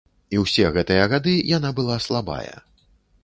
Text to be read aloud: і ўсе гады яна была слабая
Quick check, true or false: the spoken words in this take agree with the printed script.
false